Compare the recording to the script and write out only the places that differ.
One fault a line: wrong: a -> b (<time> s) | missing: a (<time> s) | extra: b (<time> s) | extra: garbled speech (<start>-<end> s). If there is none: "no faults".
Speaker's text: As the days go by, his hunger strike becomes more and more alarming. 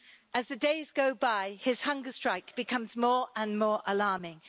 no faults